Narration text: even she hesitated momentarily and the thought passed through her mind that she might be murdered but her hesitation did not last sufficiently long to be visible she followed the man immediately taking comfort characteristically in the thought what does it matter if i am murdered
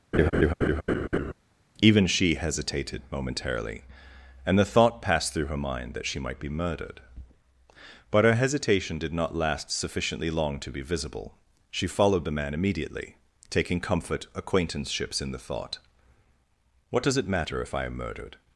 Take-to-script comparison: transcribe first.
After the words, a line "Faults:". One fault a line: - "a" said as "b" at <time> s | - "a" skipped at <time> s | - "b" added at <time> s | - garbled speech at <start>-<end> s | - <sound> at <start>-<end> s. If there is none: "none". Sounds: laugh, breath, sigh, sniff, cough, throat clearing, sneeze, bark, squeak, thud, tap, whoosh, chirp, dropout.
even she hesitated momentarily and the thought passed through her mind that she might be murdered but her hesitation did not last sufficiently long to be visible she followed the man immediately taking comfort acquaintanceships in the thought what does it matter if i am murdered
Faults:
- laugh at 0.1-1.3 s
- "characteristically" said as "acquaintanceships" at 14.3 s